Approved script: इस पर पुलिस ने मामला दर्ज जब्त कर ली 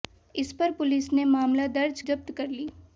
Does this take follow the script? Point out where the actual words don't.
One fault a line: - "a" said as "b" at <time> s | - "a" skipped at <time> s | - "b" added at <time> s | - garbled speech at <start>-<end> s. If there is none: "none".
none